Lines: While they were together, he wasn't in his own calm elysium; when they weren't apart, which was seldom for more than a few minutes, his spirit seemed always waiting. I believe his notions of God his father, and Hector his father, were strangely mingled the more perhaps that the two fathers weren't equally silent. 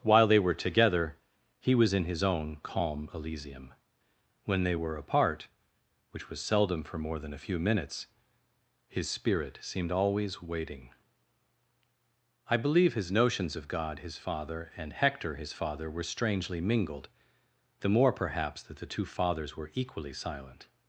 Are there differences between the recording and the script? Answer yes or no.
yes